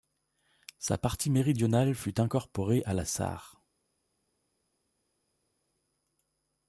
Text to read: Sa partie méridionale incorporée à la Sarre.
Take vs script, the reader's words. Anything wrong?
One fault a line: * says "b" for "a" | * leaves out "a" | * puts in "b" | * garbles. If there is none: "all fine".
* puts in "fut"